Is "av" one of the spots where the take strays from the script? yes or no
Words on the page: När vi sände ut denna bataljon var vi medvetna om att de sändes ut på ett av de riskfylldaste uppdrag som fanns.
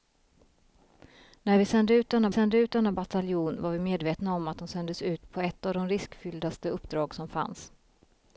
no